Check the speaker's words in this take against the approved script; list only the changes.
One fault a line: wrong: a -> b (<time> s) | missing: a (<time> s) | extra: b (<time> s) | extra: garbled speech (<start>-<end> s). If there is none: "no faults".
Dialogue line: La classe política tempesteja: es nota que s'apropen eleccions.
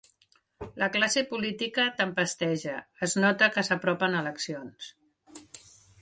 no faults